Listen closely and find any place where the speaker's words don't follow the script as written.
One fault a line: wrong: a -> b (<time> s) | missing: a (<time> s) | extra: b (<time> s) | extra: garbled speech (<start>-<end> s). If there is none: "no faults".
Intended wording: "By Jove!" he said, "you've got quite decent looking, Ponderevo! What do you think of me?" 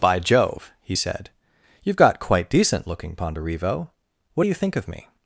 no faults